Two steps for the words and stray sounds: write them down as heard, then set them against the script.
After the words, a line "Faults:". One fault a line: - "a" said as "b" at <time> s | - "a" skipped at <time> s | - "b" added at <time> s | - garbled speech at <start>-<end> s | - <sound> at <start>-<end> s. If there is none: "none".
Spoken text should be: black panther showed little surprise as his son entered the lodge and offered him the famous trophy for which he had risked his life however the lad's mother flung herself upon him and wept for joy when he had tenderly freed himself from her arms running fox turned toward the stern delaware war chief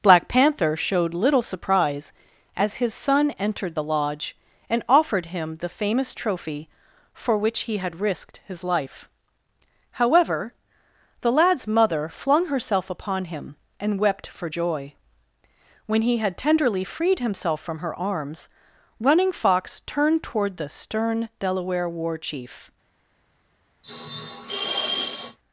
black panther showed little surprise as his son entered the lodge and offered him the famous trophy for which he had risked his life however the lad's mother flung herself upon him and wept for joy when he had tenderly freed himself from her arms running fox turned toward the stern delaware war chief
Faults:
- sniff at 23.8-25.4 s